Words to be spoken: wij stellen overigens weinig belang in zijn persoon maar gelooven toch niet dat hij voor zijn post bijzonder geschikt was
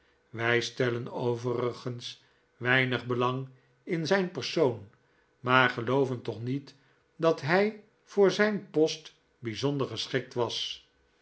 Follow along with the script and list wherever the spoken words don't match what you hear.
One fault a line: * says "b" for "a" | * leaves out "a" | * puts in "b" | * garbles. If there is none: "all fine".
all fine